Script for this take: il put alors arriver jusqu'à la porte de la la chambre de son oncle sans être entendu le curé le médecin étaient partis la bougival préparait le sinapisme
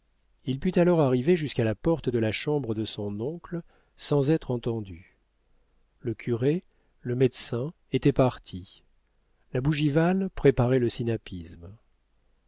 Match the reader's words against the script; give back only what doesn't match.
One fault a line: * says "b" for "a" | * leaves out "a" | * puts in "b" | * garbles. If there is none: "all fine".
* leaves out "la"